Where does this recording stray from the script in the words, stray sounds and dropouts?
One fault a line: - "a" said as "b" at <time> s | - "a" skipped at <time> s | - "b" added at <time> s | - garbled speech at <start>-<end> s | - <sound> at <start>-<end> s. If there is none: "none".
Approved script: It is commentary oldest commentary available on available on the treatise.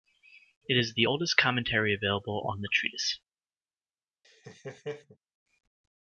- "commentary" said as "the" at 0.9 s
- "available on" skipped at 2.6 s
- laugh at 4.2-5.2 s